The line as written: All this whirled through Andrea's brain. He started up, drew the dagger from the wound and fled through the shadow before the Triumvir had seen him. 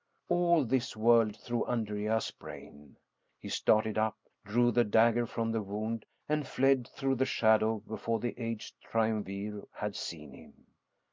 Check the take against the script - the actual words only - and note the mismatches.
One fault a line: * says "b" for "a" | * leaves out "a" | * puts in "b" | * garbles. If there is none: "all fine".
* puts in "aged"